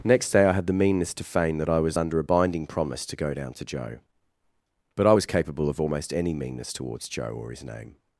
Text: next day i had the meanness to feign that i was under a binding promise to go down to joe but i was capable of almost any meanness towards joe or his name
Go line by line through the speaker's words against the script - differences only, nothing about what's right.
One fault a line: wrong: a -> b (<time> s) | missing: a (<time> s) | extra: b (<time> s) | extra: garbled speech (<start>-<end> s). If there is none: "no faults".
no faults